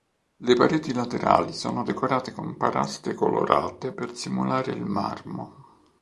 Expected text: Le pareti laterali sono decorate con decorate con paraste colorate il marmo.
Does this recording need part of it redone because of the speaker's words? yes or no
yes